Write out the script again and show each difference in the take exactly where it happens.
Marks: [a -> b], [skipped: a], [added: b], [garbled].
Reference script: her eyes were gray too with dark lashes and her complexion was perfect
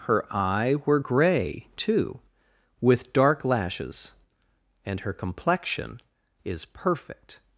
her [eyes -> eye] were gray too with dark lashes and her complexion [was -> is] perfect